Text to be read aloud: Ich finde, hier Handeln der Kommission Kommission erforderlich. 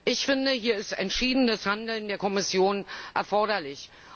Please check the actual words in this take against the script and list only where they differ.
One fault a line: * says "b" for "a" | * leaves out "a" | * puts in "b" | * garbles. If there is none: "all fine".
* puts in "ist entschiedenes"
* leaves out "Kommission"